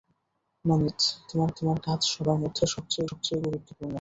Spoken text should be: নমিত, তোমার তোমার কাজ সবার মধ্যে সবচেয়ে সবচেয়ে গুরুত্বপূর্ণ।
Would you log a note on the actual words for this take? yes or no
no